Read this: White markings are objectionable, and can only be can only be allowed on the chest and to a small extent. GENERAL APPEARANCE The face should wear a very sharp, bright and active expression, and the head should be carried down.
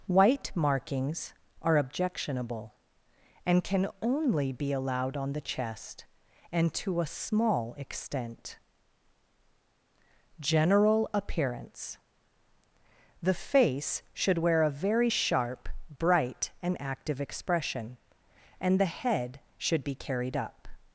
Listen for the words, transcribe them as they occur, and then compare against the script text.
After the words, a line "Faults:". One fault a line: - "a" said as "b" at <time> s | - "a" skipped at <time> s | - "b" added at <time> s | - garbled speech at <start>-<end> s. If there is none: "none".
White markings are objectionable, and can only be allowed on the chest and to a small extent. GENERAL APPEARANCE The face should wear a very sharp, bright and active expression, and the head should be carried up.
Faults:
- "can only be" skipped at 4.7 s
- "down" said as "up" at 20.4 s